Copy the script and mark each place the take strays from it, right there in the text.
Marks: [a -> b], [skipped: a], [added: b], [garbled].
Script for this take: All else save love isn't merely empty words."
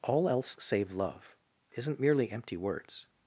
All else save love isn't merely empty words."